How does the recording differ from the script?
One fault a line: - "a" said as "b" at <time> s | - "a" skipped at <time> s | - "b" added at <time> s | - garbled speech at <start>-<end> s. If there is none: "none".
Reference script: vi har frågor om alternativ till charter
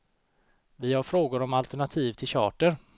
none